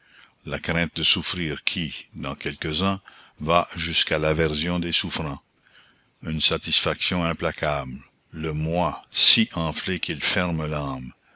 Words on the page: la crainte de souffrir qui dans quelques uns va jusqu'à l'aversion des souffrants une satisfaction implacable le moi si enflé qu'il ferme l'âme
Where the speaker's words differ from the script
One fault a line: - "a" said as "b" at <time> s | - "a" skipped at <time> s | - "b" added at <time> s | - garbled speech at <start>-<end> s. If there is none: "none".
none